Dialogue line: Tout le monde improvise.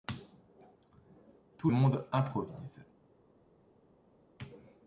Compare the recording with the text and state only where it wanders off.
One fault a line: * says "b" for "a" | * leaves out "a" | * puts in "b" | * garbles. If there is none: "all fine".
* leaves out "le"